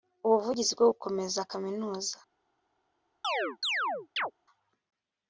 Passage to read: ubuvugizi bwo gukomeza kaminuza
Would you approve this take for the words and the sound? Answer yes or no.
no